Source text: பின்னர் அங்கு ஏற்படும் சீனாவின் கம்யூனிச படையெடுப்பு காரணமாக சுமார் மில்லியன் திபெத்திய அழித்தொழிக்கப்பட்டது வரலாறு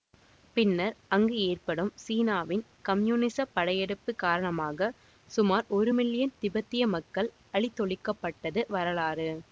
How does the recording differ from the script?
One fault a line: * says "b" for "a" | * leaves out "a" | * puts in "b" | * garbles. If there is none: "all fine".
* puts in "ஒரு"
* puts in "மக்கள்"